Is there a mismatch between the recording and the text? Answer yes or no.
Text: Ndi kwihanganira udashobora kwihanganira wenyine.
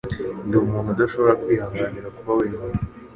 yes